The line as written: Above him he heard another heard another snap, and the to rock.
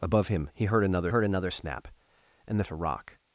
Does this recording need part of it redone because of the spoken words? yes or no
no